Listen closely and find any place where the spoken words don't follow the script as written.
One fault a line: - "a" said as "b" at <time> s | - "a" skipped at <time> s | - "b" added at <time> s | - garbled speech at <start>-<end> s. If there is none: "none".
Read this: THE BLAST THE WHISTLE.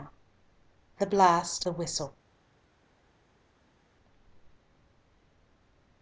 none